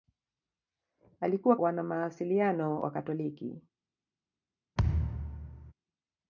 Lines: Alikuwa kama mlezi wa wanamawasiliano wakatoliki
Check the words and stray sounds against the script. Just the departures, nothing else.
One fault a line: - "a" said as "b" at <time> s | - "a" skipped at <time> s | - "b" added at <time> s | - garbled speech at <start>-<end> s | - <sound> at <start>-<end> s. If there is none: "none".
- "kama mlezi wa" skipped at 1.6 s
- thud at 4.8-5.7 s